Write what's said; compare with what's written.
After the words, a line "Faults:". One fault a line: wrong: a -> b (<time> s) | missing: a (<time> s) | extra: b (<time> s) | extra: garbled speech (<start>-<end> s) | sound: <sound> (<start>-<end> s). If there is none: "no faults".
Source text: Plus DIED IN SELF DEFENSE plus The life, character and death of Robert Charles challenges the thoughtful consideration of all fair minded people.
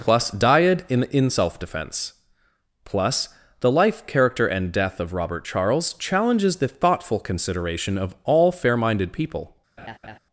Plus DIED IN IN SELF DEFENSE plus The life, character and death of Robert Charles challenges the thoughtful consideration of all fair minded people.
Faults:
extra: IN (1.1 s)
sound: laugh (9.8-10.2 s)